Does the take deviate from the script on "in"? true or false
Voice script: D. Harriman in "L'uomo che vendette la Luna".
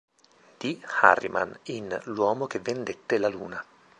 false